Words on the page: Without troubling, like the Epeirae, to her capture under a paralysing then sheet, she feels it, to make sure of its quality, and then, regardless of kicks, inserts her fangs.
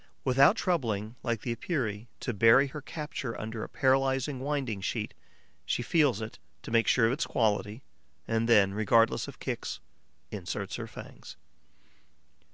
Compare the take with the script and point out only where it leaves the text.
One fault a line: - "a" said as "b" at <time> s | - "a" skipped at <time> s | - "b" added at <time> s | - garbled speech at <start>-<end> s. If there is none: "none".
- "bury" added at 2.3 s
- "then" said as "winding" at 4.4 s